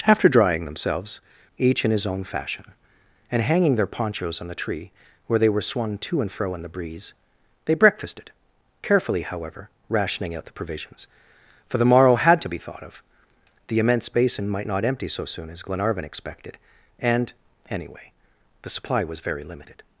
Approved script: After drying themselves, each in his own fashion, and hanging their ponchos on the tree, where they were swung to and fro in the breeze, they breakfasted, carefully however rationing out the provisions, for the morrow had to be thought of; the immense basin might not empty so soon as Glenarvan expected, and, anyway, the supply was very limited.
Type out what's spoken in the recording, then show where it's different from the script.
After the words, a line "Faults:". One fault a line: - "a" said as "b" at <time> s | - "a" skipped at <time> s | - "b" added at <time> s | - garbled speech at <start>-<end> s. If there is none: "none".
After drying themselves, each in his own fashion, and hanging their ponchos on the tree, where they were swung to and fro in the breeze, they breakfasted, carefully however rationing out the provisions, for the morrow had to be thought of; the immense basin might not empty so soon as Glenarvan expected, and, anyway, the supply was very limited.
Faults:
none